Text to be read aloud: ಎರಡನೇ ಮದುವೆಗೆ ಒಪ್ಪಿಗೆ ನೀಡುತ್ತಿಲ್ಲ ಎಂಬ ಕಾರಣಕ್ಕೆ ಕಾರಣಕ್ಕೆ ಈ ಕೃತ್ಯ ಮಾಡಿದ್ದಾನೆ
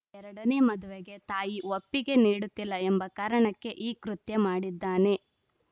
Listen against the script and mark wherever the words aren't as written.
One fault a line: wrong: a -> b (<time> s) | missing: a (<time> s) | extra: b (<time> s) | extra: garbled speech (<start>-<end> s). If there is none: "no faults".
extra: ತಾಯಿ (1.2 s)
missing: ಕಾರಣಕ್ಕೆ (3.7 s)